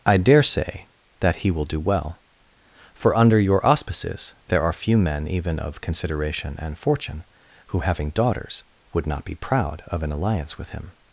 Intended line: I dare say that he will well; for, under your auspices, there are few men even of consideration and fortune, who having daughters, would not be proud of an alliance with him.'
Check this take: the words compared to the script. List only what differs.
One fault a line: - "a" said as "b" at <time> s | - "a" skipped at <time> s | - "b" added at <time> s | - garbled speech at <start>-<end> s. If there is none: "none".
- "do" added at 1.6 s